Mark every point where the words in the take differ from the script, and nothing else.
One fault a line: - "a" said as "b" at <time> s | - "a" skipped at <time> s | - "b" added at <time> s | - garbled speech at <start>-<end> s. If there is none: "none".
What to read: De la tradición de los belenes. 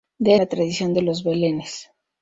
none